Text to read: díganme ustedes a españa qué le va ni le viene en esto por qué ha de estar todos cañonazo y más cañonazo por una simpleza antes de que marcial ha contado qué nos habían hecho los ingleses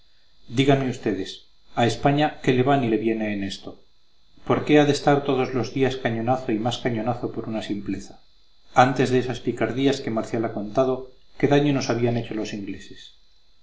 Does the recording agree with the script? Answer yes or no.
no